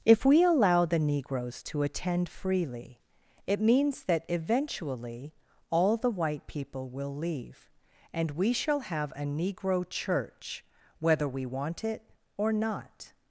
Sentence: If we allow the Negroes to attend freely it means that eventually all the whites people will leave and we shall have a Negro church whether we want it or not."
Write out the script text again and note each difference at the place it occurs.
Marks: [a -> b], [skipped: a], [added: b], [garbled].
If we allow the Negroes to attend freely it means that eventually all the [whites -> white] people will leave and we shall have a Negro church whether we want it or not."